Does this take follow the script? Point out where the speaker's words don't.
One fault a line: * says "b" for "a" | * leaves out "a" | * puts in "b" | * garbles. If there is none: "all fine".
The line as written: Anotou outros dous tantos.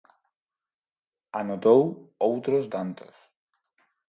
* leaves out "dous"